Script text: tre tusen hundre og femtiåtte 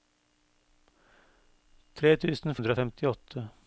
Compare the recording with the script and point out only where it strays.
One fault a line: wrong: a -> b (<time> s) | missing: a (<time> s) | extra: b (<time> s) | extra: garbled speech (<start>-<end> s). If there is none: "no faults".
no faults